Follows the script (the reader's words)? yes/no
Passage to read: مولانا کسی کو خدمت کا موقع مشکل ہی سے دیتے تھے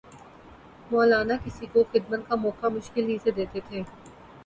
yes